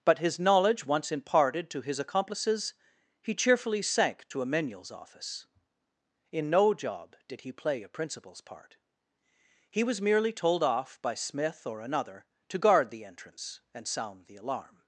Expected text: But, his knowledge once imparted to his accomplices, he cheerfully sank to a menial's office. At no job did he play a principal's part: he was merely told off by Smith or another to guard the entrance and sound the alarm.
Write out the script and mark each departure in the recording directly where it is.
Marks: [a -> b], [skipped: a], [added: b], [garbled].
But, his knowledge once imparted to his accomplices, he cheerfully sank to a menial's office. [At -> In] no job did he play a principal's part: he was merely told off by Smith or another to guard the entrance and sound the alarm.